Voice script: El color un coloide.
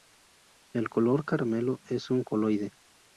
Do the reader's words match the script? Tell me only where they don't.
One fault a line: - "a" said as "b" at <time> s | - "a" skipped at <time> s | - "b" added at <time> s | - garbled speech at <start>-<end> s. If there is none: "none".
- "caramelo es" added at 1.2 s